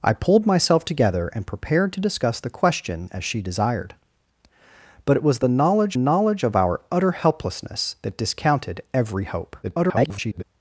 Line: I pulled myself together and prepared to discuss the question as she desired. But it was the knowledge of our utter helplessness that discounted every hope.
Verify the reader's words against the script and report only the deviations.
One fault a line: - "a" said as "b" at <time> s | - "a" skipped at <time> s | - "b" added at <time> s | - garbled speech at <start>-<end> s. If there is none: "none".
- "knowledge" added at 5.9 s
- garbled speech at 9.6-10.4 s